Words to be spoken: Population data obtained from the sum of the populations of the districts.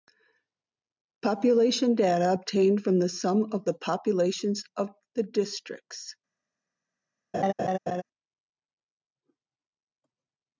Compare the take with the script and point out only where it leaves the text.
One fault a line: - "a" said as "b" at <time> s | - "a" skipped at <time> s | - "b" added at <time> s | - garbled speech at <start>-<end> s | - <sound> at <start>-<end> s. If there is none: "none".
- laugh at 7.3-8.0 s